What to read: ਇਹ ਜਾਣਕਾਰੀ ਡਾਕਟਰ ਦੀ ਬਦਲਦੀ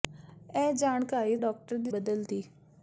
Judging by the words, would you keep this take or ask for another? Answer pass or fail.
pass